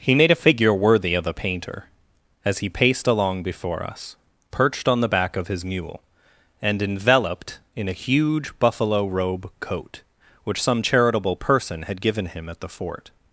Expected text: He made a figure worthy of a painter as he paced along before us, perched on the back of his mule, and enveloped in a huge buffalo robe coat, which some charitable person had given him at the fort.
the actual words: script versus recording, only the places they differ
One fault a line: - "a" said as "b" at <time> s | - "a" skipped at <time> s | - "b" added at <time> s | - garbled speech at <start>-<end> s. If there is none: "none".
none